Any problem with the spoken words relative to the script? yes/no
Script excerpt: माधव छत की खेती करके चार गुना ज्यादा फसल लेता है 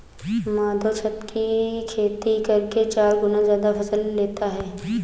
no